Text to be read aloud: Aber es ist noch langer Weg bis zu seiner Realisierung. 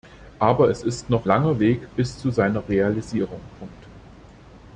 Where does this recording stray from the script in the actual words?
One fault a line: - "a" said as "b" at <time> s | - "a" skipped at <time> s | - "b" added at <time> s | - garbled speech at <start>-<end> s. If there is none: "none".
none